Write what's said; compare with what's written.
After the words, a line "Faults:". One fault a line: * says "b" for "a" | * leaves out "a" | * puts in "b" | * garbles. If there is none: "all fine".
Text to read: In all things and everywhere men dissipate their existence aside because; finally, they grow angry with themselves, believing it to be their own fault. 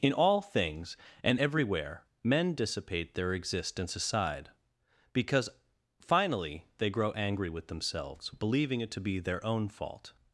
In all things and everywhere men dissipate their existence aside because; finally, they grow angry with themselves, believing it to be their own fault.
Faults:
all fine